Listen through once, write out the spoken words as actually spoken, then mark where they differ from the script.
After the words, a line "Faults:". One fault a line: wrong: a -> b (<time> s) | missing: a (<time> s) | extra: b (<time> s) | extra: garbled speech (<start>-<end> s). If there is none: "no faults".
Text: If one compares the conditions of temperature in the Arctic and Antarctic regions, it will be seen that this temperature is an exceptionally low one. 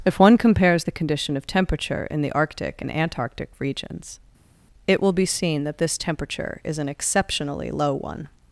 If one compares the condition of temperature in the Arctic and Antarctic regions, it will be seen that this temperature is an exceptionally low one.
Faults:
wrong: conditions -> condition (0.9 s)